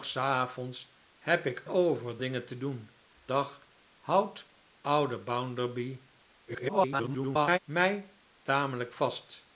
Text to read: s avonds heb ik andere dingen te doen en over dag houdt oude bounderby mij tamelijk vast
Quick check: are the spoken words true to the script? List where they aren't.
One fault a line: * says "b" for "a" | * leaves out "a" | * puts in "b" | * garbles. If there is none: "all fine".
* says "over" for "andere"
* leaves out "en over"
* garbles